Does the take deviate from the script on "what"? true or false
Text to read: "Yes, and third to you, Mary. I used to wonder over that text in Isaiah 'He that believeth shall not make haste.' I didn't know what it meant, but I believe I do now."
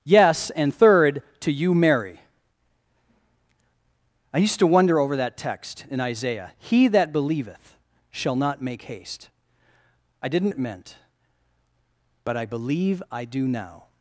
true